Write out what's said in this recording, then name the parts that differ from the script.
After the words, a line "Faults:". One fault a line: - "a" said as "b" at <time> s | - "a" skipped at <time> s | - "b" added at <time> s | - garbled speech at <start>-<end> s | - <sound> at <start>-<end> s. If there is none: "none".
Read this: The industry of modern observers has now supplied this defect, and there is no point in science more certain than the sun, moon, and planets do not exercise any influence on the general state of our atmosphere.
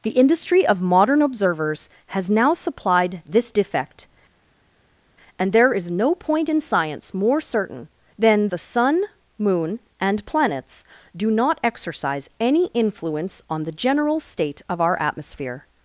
The industry of modern observers has now supplied this defect, and there is no point in science more certain than the sun, moon, and planets do not exercise any influence on the general state of our atmosphere.
Faults:
none